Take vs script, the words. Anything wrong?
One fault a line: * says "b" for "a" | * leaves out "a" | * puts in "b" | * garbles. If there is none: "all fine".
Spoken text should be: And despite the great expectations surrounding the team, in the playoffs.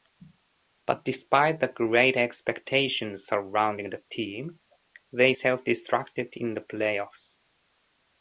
* says "But" for "And"
* puts in "they self destructed"